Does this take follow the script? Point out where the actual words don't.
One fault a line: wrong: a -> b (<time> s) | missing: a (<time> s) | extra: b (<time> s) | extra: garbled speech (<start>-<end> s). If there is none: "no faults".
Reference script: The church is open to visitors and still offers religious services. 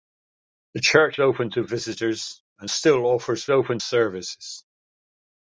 missing: is (1.2 s)
wrong: religious -> open (3.5 s)